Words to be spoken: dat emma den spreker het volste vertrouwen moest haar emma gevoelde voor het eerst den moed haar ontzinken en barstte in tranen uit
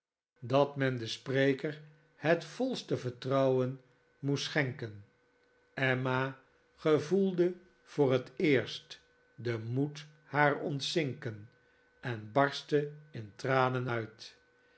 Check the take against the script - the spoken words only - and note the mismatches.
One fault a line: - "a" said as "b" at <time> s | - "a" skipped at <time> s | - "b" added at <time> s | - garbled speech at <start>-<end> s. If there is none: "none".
- "emma" said as "men" at 0.8 s
- "haar" said as "schenken" at 4.4 s